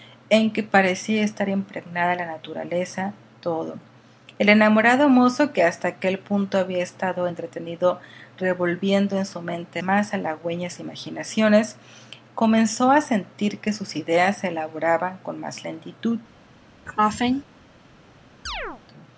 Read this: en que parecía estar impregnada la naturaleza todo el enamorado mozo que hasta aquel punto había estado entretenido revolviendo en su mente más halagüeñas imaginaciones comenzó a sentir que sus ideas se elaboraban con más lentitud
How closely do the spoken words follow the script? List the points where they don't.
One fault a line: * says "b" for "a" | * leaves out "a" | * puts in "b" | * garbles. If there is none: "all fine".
all fine